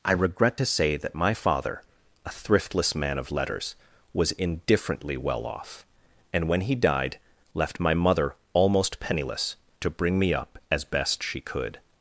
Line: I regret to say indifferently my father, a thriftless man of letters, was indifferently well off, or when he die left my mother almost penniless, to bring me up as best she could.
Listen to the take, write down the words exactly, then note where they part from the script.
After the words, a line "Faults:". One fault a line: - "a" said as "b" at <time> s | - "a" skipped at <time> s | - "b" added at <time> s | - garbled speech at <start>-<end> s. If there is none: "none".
I regret to say that my father, a thriftless man of letters, was indifferently well off, and when he died left my mother almost penniless, to bring me up as best she could.
Faults:
- "indifferently" said as "that" at 0.9 s
- "or" said as "and" at 6.3 s
- "die" said as "died" at 6.7 s